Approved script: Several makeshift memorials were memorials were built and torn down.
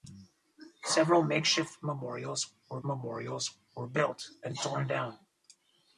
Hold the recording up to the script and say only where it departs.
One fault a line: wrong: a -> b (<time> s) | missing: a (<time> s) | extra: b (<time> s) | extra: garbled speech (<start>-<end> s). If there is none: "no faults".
no faults